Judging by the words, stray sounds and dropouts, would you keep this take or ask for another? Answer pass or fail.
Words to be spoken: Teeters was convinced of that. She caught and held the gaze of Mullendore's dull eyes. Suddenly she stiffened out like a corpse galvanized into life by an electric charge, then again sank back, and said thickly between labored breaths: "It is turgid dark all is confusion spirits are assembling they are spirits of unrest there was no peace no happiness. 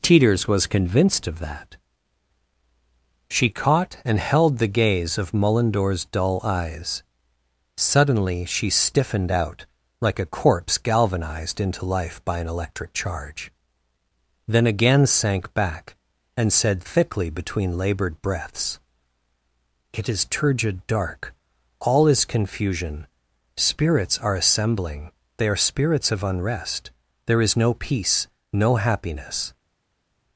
fail